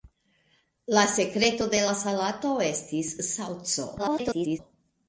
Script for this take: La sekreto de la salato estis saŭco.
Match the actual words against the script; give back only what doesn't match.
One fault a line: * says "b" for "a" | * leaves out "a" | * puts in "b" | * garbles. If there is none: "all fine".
* garbles